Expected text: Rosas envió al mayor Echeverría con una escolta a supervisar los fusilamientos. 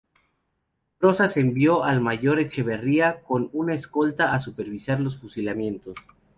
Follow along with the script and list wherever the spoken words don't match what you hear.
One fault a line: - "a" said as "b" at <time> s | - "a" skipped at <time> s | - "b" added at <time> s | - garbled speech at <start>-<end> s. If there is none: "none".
none